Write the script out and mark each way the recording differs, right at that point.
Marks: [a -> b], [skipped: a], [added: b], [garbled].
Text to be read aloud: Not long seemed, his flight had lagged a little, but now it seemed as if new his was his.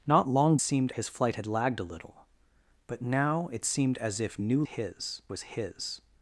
Not long seemed, his flight had lagged a little, but now it seemed as if new his was his.